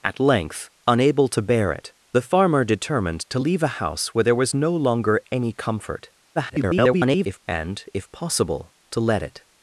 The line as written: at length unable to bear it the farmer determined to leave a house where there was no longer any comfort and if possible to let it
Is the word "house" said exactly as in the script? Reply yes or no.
yes